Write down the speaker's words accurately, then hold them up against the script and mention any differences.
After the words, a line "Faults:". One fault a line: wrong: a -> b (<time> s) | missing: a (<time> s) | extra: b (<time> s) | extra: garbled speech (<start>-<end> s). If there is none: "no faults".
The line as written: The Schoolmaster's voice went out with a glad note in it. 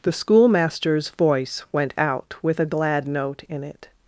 The Schoolmaster's voice went out with a glad note in it.
Faults:
no faults